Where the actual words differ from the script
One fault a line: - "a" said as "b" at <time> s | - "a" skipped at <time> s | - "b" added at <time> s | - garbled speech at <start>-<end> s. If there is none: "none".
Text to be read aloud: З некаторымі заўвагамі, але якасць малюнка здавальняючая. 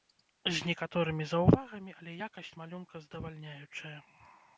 none